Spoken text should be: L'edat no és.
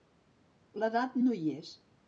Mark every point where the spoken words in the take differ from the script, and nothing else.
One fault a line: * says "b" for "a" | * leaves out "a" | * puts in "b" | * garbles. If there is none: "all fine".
* puts in "hi"